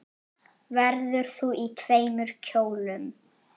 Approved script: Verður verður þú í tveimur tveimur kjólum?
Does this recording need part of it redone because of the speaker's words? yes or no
yes